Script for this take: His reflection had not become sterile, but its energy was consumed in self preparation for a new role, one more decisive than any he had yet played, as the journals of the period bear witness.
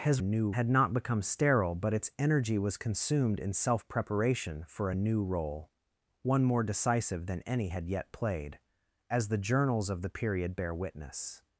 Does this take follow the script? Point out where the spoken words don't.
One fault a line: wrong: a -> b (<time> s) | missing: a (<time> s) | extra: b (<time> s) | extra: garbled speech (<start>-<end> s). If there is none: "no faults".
wrong: reflection -> new (0.2 s)
missing: he (7.7 s)